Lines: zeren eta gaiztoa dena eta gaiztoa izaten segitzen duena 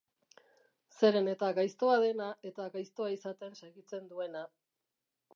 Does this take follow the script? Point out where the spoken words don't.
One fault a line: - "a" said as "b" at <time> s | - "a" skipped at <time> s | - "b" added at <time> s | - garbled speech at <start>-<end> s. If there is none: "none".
none